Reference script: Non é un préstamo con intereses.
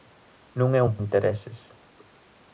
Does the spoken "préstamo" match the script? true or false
false